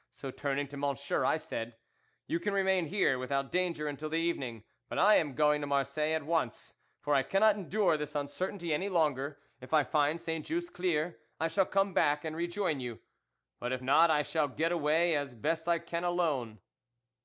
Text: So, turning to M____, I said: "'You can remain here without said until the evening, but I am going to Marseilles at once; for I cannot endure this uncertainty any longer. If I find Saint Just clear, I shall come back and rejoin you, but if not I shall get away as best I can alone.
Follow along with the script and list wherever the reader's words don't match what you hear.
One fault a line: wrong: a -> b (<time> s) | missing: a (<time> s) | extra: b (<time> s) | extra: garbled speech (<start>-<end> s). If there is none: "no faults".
wrong: said -> danger (3.5 s)